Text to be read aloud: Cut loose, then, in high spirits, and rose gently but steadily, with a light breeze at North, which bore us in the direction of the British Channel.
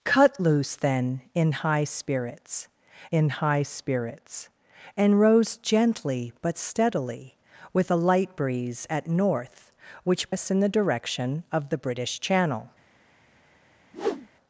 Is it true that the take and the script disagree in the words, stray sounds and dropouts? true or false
true